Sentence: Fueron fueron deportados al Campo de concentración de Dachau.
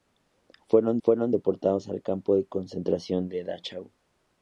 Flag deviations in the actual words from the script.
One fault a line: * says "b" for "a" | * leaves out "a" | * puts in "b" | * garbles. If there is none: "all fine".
all fine